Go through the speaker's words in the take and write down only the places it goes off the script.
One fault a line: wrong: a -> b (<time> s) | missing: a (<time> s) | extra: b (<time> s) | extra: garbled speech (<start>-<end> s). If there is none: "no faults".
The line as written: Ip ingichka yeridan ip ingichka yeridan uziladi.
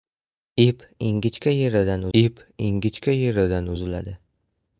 no faults